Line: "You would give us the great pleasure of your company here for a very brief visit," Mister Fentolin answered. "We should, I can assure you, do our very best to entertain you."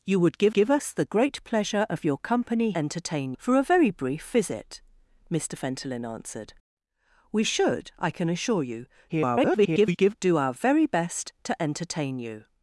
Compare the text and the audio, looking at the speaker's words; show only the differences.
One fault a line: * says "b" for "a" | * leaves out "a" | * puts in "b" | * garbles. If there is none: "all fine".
* puts in "give"
* says "entertain" for "here"
* garbles